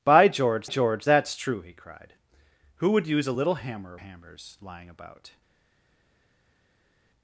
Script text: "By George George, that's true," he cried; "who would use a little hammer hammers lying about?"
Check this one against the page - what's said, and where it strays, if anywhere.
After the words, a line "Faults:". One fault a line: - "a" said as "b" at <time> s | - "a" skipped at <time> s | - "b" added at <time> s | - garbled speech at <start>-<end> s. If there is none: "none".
"By George George, that's true," he cried; "who would use a little hammer hammers lying about?"
Faults:
none